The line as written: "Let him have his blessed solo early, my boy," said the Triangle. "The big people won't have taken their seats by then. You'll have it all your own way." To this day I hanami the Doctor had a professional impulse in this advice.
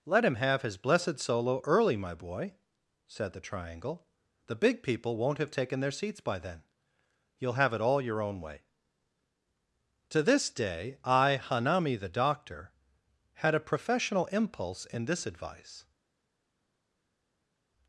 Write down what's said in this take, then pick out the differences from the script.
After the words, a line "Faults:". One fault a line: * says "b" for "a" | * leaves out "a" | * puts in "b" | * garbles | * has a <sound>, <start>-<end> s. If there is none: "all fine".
"Let him have his blessed solo early, my boy," said the Triangle. "The big people won't have taken their seats by then. You'll have it all your own way." To this day I hanami the Doctor had a professional impulse in this advice.
Faults:
all fine